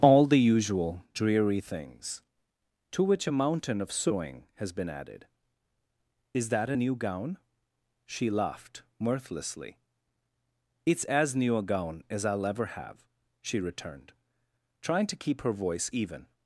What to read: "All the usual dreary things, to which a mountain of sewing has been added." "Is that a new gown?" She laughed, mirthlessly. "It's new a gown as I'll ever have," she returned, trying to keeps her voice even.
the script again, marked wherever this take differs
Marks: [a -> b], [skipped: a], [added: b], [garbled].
"All the usual dreary things, to which a mountain of sewing has been added." "Is that a new gown?" She laughed, mirthlessly. "It's [added: as] new a gown as I'll ever have," she returned, trying to [keeps -> keep] her voice even.